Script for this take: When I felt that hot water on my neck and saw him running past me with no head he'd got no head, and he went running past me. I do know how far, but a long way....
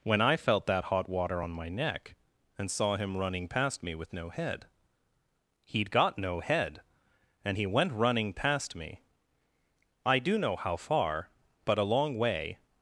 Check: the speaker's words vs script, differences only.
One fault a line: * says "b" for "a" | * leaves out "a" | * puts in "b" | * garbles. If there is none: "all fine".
all fine